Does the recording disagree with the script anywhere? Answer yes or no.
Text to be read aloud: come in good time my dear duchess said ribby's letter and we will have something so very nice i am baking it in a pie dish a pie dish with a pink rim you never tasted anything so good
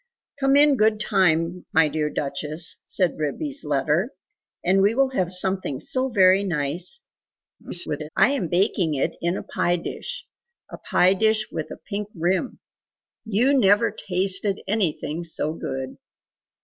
yes